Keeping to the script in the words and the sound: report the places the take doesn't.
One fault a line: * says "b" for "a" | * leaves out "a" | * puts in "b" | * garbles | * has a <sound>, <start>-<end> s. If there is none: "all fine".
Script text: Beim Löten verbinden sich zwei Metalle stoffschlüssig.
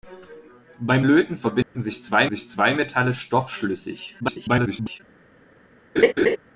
* has a dropout, 1.6-1.8 s
* puts in "sich zwei"
* garbles
* has a laugh, 6.0-6.4 s